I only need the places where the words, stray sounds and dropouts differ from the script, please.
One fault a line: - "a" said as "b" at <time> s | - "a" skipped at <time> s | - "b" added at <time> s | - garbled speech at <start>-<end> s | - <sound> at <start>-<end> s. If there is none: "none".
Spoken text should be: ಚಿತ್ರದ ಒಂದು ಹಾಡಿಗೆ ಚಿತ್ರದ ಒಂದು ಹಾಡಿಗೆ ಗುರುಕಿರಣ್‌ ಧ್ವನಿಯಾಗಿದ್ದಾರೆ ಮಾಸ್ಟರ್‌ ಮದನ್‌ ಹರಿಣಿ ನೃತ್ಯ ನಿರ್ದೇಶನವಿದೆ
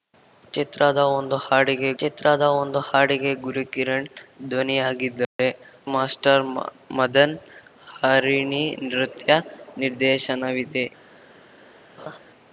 - dropout at 5.2-5.4 s
- laugh at 12.0-12.2 s